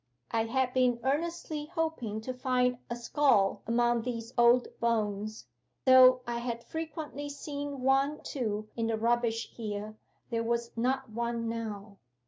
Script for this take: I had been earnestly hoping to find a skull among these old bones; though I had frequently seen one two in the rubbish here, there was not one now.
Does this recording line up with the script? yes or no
yes